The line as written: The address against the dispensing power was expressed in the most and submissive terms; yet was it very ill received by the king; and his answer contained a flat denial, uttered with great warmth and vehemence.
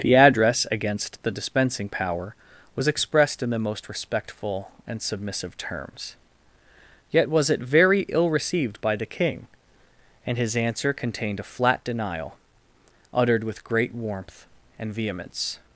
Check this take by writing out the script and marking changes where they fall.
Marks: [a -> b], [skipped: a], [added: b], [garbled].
The address against the dispensing power was expressed in the most [added: respectful] and submissive terms; yet was it very ill received by the king; and his answer contained a flat denial, uttered with great warmth and vehemence.